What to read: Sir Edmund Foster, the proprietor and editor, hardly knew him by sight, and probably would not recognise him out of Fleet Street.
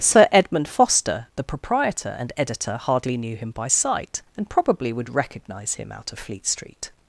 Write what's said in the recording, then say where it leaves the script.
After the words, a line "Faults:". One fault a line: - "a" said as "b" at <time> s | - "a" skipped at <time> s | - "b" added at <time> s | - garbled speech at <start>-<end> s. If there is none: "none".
Sir Edmund Foster, the proprietor and editor, hardly knew him by sight, and probably would recognise him out of Fleet Street.
Faults:
- "not" skipped at 5.1 s